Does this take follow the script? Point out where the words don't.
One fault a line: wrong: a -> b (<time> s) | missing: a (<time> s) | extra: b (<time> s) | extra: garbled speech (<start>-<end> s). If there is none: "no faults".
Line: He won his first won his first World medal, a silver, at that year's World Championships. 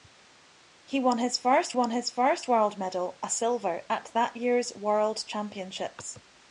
no faults